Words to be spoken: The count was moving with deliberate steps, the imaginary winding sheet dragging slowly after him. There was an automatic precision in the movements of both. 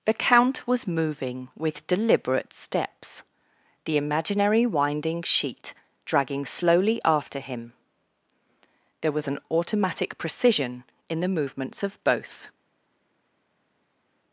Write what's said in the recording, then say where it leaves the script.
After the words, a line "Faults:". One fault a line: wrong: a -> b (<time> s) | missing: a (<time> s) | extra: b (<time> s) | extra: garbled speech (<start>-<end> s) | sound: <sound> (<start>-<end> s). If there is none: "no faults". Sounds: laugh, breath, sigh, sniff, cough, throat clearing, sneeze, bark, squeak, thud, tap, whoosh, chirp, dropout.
The count was moving with deliberate steps, the imaginary winding sheet dragging slowly after him. There was an automatic precision in the movements of both.
Faults:
no faults